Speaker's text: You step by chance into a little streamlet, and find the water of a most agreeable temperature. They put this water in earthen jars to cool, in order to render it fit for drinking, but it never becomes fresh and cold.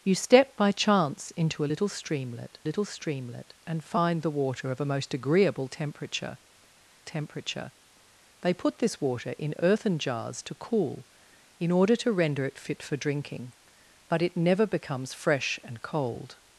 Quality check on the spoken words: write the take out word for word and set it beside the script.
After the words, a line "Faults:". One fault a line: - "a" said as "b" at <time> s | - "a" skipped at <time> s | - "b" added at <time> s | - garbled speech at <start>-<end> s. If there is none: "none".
You step by chance into a little streamlet little streamlet, and find the water of a most agreeable temperature temperature. They put this water in earthen jars to cool, in order to render it fit for drinking, but it never becomes fresh and cold.
Faults:
- "little streamlet" added at 2.6 s
- "temperature" added at 7.0 s